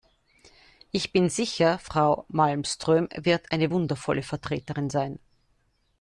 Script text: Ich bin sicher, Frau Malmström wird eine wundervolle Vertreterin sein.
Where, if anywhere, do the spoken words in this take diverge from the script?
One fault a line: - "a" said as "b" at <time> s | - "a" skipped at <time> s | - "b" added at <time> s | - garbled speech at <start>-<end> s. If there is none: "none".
none